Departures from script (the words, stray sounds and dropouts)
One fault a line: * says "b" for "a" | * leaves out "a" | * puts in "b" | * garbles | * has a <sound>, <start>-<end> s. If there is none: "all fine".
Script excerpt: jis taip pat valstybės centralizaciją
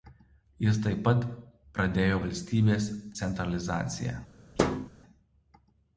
* puts in "pradėjo"
* has a thud, 4.6-4.9 s